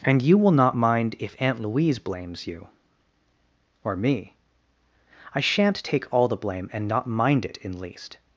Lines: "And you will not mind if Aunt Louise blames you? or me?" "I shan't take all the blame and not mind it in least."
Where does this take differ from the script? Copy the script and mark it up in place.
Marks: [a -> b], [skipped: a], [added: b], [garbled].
"And you will not mind if Aunt Louise blames you? or me?" "I shan't take all the blame and not mind it in least."